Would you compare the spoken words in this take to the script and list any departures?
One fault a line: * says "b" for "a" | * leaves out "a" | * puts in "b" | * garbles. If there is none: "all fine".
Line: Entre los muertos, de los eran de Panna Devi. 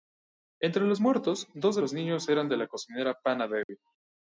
* puts in "dos"
* puts in "niños"
* puts in "la cocinera"